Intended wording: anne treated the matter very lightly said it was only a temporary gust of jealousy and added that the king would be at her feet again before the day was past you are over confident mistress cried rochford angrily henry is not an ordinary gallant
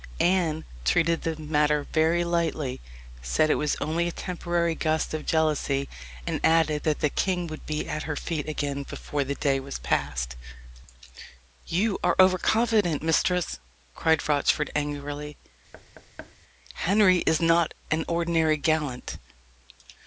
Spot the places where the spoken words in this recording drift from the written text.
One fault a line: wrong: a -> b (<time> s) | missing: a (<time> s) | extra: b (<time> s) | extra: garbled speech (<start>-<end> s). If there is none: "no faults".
no faults